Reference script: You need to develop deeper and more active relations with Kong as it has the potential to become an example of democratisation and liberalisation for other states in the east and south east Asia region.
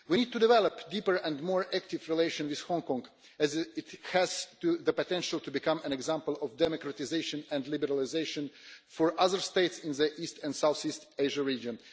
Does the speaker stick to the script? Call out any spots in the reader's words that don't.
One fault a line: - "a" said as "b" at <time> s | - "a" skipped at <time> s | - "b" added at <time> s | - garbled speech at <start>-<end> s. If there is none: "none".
- "You" said as "We" at 0.1 s
- "Hong" added at 2.6 s